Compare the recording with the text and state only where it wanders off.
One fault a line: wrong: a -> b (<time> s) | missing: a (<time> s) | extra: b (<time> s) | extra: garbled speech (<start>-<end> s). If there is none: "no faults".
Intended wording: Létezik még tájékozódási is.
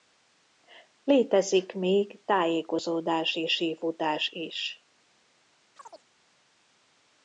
extra: sífutás (3.5 s)